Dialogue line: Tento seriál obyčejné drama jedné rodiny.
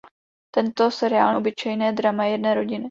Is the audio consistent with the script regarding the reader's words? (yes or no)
yes